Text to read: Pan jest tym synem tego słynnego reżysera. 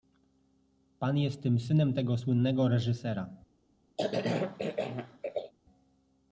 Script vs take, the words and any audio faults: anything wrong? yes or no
yes